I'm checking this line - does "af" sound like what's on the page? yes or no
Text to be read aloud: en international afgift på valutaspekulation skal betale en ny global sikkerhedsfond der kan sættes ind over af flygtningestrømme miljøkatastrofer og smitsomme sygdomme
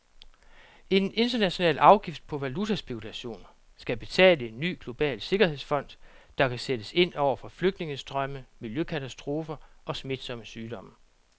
no